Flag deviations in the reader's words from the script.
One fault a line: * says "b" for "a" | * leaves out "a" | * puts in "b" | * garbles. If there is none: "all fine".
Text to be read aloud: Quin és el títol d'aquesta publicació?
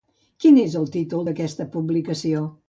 all fine